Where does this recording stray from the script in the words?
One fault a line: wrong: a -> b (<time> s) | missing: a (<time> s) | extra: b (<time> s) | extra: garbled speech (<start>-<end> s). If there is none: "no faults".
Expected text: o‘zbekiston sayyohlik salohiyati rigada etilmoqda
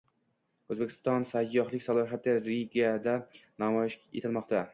extra: namoyish (3.7 s)